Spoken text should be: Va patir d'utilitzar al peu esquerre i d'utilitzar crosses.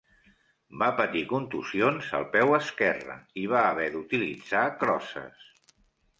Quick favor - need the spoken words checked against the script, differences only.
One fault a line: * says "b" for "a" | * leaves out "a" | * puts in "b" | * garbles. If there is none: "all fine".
* says "contusions" for "d'utilitzar"
* puts in "va haver"